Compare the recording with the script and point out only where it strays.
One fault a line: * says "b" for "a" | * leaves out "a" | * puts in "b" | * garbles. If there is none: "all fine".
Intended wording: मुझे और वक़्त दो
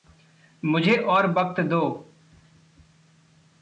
all fine